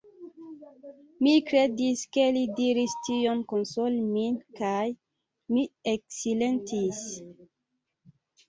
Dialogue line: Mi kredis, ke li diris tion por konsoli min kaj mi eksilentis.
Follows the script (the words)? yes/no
no